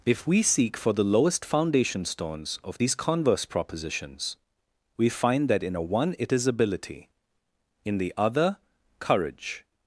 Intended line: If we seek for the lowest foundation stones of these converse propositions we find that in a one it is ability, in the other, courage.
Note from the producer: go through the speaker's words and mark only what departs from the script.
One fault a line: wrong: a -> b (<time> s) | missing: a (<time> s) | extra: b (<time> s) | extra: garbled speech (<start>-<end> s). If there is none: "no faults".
no faults